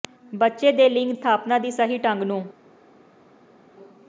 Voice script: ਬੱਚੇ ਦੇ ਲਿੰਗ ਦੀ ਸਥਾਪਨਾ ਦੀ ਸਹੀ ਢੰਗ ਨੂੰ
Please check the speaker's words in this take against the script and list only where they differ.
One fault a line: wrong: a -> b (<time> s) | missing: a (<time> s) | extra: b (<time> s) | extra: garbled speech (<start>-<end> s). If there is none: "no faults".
missing: ਦੀ (1.1 s)